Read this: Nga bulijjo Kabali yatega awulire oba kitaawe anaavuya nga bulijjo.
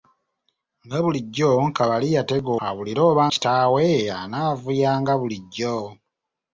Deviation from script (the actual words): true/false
false